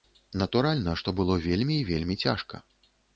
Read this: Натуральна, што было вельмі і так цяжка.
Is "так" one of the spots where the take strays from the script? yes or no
yes